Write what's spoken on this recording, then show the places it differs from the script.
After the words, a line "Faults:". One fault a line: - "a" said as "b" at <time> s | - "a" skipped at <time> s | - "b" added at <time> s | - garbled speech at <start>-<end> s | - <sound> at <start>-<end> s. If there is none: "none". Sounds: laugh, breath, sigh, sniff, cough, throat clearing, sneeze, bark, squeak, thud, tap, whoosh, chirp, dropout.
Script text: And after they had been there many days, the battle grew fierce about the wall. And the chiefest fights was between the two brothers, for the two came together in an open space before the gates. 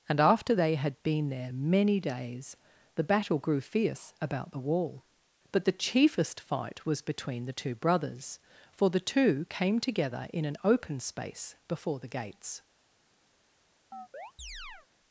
And after they had been there many days, the battle grew fierce about the wall. But the chiefest fight was between the two brothers, for the two came together in an open space before the gates.
Faults:
- "And" said as "But" at 5.5 s
- "fights" said as "fight" at 6.4 s
- chirp at 13.9-14.9 s